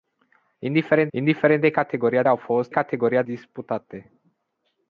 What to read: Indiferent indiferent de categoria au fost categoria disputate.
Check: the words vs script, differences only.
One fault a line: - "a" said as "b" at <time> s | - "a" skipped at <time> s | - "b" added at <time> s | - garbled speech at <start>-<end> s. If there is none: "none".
none